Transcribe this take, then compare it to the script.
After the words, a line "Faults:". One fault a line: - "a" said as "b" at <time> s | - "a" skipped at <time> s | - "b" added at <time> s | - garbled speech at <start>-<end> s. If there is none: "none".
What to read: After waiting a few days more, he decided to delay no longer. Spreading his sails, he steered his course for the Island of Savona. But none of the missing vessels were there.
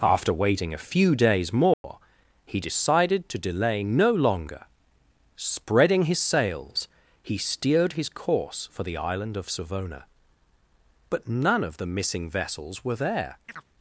After waiting a few days more, he decided to delay no longer. Spreading his sails, he steered his course for the Island of Savona. But none of the missing vessels were there.
Faults:
none